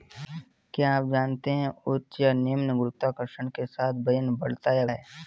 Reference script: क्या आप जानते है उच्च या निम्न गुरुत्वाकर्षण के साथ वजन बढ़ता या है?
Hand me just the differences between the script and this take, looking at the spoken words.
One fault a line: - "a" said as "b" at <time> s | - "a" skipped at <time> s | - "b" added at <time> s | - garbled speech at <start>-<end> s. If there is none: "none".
none